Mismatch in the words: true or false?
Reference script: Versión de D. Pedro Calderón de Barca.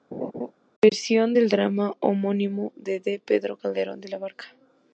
true